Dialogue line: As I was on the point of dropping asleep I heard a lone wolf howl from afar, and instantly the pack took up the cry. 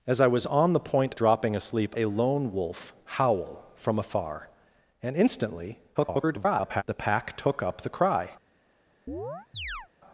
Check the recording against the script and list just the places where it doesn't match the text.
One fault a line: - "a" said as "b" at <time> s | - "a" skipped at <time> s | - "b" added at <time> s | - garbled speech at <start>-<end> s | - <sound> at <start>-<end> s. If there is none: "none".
- "of" skipped at 1.1 s
- "I heard" skipped at 1.9 s
- garbled speech at 5.9-6.8 s
- chirp at 9.1-9.9 s